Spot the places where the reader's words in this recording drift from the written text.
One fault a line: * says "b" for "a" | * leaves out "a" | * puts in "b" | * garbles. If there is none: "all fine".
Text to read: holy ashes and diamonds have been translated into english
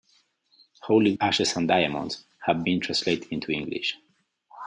all fine